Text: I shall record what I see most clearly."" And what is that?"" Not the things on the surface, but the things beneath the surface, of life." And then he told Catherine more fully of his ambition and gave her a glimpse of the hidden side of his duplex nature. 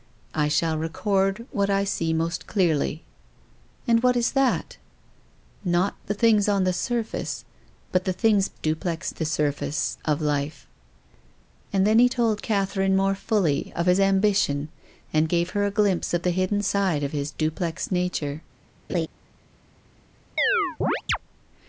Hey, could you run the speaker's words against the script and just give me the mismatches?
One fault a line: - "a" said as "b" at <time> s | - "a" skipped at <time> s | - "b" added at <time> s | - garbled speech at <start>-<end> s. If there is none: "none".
- "beneath" said as "duplex" at 8.5 s